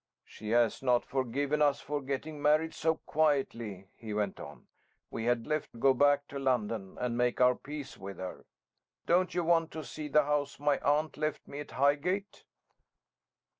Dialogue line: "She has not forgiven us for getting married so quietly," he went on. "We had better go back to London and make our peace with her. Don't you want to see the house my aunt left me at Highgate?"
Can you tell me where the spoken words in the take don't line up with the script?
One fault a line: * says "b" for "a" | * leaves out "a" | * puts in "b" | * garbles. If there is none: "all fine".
* says "left" for "better"